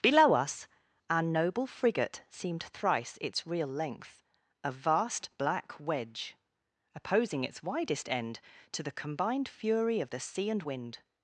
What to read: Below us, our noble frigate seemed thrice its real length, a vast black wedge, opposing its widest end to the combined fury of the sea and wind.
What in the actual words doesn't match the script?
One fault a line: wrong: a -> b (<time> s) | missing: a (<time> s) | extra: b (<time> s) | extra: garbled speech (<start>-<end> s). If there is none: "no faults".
no faults